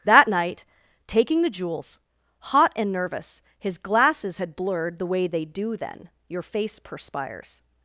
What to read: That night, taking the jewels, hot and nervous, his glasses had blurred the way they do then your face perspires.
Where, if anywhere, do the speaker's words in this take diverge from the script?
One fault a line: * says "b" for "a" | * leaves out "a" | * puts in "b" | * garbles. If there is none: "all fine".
all fine